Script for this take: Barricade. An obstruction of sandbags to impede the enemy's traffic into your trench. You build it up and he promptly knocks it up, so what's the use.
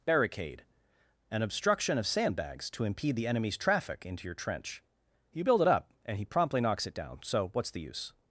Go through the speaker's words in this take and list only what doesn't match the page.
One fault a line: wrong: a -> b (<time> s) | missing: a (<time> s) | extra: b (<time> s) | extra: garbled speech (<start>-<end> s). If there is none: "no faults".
wrong: up -> down (6.9 s)